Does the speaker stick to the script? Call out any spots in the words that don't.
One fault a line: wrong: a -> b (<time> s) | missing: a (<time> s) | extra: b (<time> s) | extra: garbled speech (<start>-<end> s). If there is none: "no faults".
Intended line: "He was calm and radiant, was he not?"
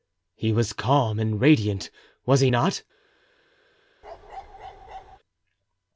no faults